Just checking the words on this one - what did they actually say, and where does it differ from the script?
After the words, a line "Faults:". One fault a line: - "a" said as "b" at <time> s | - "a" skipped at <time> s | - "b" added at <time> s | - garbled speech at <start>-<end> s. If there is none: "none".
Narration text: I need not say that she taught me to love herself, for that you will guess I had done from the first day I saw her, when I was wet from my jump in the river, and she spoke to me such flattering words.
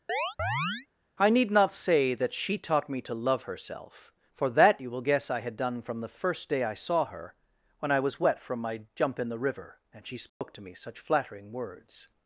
I need not say that she taught me to love herself, for that you will guess I had done from the first day I saw her, when I was wet from my jump in the river, and she spoke to me such flattering words.
Faults:
none